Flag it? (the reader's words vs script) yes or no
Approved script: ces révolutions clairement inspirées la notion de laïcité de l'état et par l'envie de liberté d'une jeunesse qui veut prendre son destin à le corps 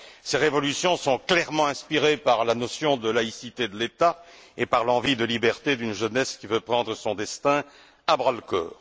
yes